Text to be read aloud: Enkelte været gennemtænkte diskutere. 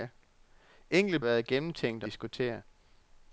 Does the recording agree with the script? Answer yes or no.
yes